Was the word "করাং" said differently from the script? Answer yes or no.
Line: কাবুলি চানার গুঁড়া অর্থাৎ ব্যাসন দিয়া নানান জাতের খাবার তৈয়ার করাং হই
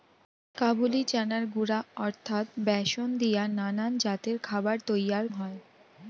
yes